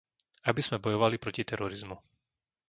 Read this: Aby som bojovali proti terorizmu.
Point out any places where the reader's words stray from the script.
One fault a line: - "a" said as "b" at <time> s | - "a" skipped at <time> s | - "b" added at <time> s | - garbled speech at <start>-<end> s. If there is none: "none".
- "som" said as "sme" at 0.7 s